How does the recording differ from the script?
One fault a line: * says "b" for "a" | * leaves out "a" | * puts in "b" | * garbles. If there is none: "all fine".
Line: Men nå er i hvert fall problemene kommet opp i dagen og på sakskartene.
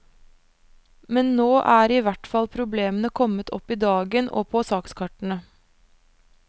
all fine